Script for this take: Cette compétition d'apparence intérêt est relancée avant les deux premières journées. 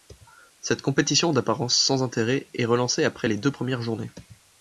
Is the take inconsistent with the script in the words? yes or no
yes